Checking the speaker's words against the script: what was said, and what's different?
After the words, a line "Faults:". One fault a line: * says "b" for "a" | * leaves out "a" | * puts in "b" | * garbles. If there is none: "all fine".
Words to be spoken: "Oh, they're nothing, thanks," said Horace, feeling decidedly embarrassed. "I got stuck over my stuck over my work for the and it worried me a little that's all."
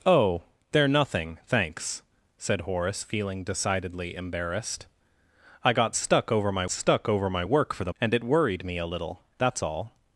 "Oh, they're nothing, thanks," said Horace, feeling decidedly embarrassed. "I got stuck over my stuck over my work for the and it worried me a little that's all."
Faults:
all fine